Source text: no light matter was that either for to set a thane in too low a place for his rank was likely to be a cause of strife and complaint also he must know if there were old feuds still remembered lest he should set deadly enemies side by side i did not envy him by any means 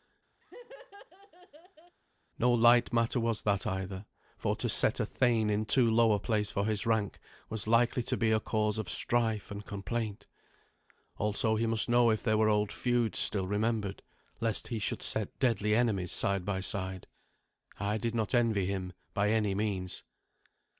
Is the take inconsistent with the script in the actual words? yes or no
no